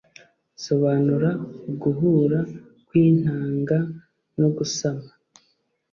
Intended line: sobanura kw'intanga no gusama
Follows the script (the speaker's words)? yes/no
no